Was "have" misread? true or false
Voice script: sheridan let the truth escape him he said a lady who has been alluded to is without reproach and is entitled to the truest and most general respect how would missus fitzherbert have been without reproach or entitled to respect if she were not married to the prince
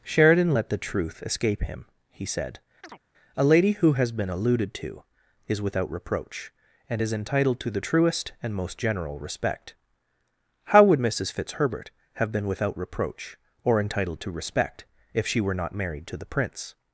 false